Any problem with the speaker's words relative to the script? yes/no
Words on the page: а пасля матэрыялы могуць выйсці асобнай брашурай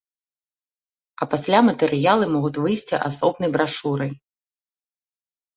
no